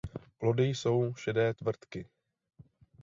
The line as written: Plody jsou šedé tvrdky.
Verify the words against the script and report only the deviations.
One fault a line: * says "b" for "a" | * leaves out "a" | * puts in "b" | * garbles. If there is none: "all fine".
all fine